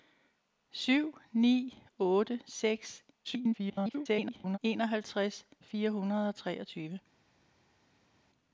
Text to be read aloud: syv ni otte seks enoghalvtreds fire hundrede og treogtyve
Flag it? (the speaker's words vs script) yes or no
yes